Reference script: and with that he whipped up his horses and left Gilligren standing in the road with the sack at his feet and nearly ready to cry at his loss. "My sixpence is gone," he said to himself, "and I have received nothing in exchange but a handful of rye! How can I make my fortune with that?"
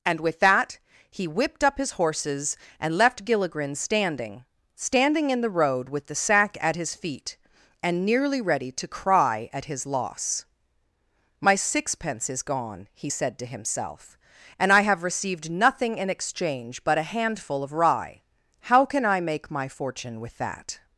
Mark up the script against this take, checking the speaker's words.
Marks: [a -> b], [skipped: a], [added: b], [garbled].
and with that he whipped up his horses and left Gilligren standing [added: standing] in the road with the sack at his feet and nearly ready to cry at his loss. "My sixpence is gone," he said to himself, "and I have received nothing in exchange but a handful of rye! How can I make my fortune with that?"